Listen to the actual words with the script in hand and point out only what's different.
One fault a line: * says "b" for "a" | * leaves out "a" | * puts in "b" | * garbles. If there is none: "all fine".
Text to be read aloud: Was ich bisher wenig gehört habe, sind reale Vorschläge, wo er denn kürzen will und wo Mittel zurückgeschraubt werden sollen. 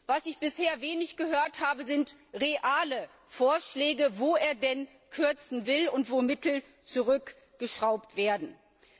all fine